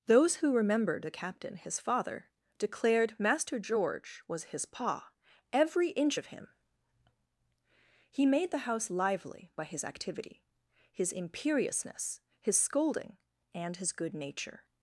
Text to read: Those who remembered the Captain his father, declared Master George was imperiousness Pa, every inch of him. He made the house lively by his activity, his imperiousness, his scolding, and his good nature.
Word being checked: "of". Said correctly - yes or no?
yes